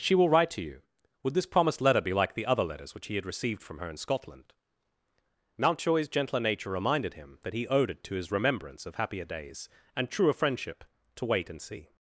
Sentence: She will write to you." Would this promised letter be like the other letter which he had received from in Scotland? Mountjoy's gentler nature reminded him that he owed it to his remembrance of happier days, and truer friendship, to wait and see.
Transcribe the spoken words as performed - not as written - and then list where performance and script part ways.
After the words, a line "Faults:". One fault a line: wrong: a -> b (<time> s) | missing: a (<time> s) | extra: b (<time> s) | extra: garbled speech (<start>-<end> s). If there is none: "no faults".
She will write to you." Would this promised letter be like the other letters which he had received from her in Scotland? Mountjoy's gentler nature reminded him that he owed it to his remembrance of happier days, and truer friendship, to wait and see.
Faults:
wrong: letter -> letters (2.6 s)
extra: her (3.8 s)